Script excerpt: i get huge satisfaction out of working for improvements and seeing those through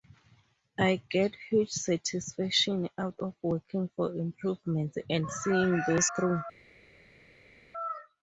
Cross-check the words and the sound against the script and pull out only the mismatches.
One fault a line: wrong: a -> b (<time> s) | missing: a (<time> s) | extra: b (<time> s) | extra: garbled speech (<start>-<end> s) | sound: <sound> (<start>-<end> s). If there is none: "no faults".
no faults